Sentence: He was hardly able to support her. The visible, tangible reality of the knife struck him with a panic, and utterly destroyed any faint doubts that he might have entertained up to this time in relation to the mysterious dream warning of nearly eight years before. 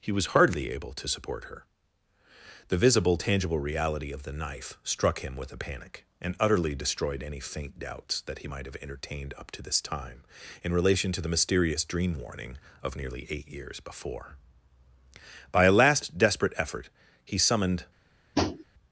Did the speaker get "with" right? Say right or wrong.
right